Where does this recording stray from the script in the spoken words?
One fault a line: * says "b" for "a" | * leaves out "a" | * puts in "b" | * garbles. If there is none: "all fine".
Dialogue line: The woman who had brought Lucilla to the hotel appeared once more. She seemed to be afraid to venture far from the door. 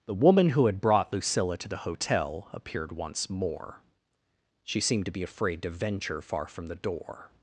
all fine